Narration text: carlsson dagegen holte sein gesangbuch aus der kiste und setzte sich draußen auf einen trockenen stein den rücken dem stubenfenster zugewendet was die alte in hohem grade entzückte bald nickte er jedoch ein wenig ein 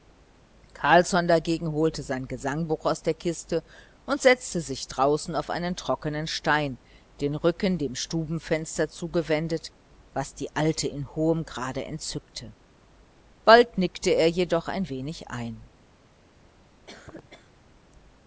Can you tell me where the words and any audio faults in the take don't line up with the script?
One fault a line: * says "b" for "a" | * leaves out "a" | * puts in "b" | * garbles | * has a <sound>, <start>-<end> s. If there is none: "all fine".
* has a cough, 16.9-17.5 s